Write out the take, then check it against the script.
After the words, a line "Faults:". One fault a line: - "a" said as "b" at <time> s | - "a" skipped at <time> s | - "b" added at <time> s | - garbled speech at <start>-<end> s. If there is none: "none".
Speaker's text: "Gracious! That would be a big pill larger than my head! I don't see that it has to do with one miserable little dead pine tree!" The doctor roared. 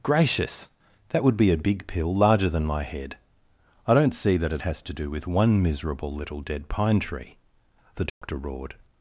"Gracious! That would be a big pill larger than my head! I don't see that it has to do with one miserable little dead pine tree!" The doctor roared.
Faults:
none